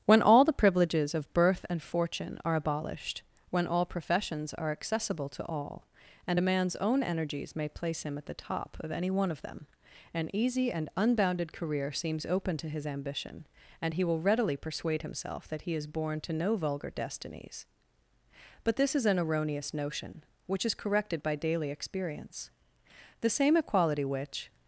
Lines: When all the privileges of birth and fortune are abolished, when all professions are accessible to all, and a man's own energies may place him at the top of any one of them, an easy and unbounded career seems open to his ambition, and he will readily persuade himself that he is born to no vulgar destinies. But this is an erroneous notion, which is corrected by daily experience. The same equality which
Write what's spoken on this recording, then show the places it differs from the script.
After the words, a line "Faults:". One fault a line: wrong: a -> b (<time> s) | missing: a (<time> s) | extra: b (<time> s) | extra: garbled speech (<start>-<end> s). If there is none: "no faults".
When all the privileges of birth and fortune are abolished, when all professions are accessible to all, and a man's own energies may place him at the top of any one of them, an easy and unbounded career seems open to his ambition, and he will readily persuade himself that he is born to no vulgar destinies. But this is an erroneous notion, which is corrected by daily experience. The same equality which
Faults:
no faults